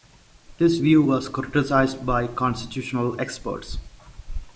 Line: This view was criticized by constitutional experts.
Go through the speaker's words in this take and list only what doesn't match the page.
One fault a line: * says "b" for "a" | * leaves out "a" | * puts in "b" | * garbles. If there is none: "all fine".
all fine